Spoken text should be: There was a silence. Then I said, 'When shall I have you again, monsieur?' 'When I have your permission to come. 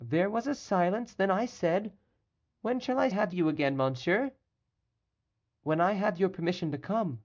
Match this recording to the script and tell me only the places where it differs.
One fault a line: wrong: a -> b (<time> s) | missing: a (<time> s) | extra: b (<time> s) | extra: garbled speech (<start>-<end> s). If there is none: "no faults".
no faults